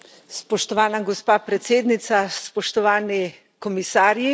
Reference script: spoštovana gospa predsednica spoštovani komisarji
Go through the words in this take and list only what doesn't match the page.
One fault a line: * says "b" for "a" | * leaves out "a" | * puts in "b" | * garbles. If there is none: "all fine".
all fine